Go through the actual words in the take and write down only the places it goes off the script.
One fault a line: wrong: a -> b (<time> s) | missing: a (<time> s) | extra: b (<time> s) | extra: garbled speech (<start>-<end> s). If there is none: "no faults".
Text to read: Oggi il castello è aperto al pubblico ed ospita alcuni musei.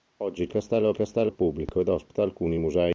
wrong: aperto -> castello (0.9 s)